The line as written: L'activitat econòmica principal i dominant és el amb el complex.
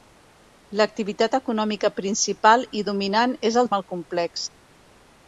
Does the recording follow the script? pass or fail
pass